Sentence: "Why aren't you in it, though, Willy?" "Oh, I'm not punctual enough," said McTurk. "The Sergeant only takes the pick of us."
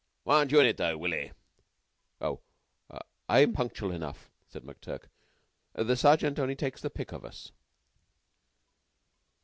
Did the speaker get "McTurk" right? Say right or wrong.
right